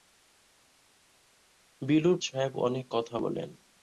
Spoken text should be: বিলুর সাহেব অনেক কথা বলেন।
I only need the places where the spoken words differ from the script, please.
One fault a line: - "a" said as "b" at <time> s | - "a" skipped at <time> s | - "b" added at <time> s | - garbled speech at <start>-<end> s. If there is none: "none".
none